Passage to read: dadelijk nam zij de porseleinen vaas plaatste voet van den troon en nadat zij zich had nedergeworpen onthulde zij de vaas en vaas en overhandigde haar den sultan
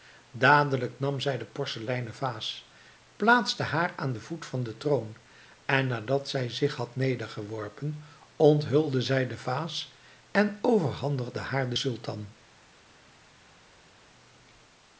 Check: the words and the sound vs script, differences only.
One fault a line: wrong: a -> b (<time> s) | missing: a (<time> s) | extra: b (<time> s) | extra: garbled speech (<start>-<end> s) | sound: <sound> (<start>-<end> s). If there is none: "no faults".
extra: haar aan den (3.6 s)
missing: vaas en (10.6 s)